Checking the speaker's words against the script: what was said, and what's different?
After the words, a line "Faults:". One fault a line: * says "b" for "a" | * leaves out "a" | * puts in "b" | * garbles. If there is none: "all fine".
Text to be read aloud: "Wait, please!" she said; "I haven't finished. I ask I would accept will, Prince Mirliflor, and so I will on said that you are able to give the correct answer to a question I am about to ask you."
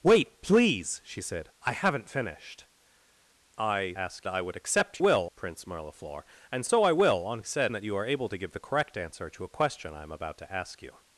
"Wait, please!" she said; "I haven't finished. I ask I would accept will, Prince Mirliflor, and so I will on said that you are able to give the correct answer to a question I am about to ask you."
Faults:
all fine